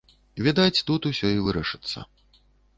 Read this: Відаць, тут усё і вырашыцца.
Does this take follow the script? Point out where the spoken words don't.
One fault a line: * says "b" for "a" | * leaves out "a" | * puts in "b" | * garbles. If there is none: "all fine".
all fine